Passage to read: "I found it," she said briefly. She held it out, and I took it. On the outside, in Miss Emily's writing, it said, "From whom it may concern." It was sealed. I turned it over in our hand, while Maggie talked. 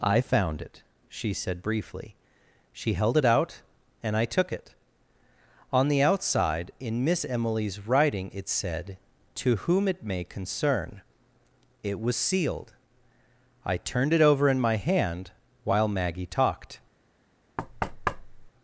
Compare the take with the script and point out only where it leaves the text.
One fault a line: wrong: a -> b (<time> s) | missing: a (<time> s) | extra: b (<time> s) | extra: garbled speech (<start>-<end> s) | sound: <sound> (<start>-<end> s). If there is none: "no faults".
wrong: From -> To (9.4 s)
wrong: our -> my (14.6 s)
sound: thud (17.6-18.5 s)